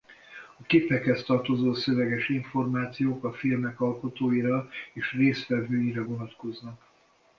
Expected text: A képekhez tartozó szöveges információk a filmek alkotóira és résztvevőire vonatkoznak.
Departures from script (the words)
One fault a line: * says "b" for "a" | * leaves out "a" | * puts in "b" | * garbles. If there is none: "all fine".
all fine